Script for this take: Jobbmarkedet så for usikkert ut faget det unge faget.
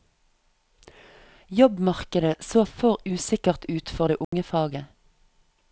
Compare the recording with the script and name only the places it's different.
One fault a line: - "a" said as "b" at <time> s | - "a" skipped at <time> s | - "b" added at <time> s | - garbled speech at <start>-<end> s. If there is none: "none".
- "faget" said as "for" at 3.9 s